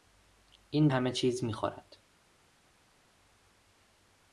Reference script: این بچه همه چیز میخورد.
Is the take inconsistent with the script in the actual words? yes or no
yes